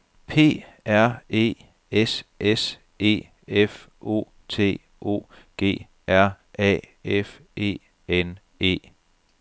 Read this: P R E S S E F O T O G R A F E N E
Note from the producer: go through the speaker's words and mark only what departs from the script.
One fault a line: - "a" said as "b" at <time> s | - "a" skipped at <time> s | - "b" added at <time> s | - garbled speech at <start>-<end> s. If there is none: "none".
none